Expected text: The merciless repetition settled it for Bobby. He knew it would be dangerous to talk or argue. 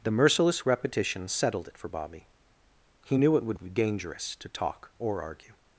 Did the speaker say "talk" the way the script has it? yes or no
yes